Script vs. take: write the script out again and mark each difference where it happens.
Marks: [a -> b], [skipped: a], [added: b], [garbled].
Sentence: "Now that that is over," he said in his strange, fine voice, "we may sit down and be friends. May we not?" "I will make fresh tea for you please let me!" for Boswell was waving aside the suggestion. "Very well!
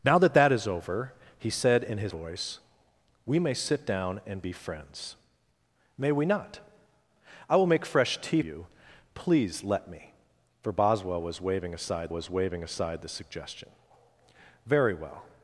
"Now that that is over," he said in his [skipped: strange, fine] voice, "we may sit down and be friends. May we not?" "I will make fresh tea [skipped: for] you please let me!" for Boswell was waving aside [added: was waving aside] the suggestion. "Very well!